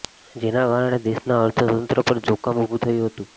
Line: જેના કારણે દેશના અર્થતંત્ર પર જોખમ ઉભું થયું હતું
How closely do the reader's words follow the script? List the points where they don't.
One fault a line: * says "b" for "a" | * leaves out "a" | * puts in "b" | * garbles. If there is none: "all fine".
all fine